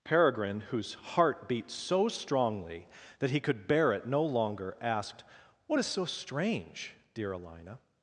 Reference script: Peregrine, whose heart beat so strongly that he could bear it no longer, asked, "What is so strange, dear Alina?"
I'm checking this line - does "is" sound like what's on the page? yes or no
yes